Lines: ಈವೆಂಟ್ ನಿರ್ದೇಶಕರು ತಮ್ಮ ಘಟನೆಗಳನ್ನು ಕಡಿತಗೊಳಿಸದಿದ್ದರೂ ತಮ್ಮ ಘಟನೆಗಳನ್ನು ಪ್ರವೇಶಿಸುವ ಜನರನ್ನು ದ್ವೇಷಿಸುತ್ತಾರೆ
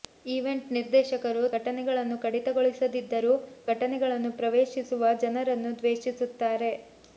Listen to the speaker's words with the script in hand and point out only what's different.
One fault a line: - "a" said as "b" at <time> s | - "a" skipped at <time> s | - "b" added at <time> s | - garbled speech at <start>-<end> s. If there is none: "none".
- "ತಮ್ಮ" skipped at 1.4 s
- "ತಮ್ಮ" skipped at 3.3 s